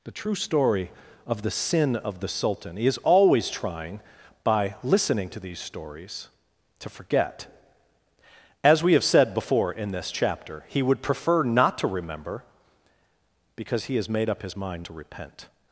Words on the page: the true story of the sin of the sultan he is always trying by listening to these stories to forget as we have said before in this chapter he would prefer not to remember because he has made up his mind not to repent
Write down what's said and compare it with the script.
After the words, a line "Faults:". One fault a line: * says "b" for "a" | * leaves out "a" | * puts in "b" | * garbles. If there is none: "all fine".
the true story of the sin of the sultan he is always trying by listening to these stories to forget as we have said before in this chapter he would prefer not to remember because he has made up his mind to repent
Faults:
* leaves out "not"